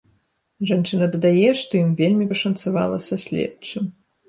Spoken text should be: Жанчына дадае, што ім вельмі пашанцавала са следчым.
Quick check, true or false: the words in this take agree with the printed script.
true